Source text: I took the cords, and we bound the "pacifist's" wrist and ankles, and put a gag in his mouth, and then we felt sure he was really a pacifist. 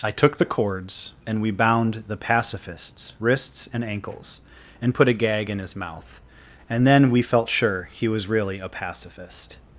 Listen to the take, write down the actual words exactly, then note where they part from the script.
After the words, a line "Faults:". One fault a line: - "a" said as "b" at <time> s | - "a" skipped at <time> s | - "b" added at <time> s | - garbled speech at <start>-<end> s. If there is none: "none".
I took the cords, and we bound the "pacifist's" wrists and ankles, and put a gag in his mouth, and then we felt sure he was really a pacifist.
Faults:
- "wrist" said as "wrists" at 3.2 s